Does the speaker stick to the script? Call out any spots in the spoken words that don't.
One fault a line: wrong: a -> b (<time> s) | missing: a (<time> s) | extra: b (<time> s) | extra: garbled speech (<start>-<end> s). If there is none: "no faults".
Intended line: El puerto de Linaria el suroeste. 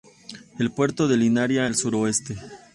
no faults